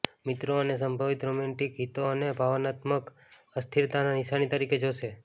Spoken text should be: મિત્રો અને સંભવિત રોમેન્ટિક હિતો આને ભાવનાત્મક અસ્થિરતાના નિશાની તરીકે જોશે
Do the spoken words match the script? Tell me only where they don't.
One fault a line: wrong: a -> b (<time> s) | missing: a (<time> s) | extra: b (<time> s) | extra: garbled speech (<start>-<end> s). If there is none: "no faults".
no faults